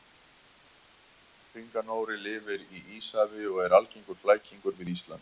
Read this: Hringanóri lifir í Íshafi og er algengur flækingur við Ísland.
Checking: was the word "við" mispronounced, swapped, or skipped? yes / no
no